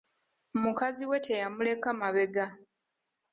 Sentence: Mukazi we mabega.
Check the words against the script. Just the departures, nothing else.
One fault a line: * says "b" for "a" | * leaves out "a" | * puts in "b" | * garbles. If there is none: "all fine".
* puts in "teyamuleka"